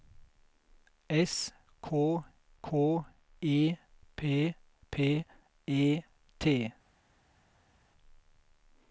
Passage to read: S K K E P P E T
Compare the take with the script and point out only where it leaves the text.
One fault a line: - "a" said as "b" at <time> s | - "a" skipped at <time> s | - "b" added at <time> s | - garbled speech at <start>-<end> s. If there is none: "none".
none